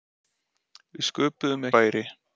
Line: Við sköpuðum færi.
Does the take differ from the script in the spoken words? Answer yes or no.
no